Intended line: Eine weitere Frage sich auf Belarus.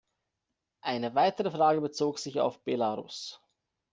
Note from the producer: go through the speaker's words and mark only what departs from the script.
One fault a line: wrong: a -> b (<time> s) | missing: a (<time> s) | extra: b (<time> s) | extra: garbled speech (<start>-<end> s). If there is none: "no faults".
extra: bezog (1.8 s)